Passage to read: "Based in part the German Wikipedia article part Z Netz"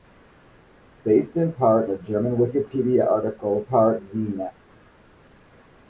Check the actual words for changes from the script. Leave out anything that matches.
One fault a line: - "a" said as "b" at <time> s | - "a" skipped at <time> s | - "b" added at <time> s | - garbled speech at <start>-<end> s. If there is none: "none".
none